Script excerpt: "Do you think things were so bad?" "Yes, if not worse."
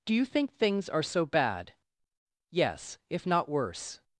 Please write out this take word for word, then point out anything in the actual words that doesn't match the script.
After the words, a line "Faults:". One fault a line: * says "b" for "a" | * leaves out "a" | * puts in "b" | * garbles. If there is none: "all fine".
"Do you think things are so bad?" "Yes, if not worse."
Faults:
* says "are" for "were"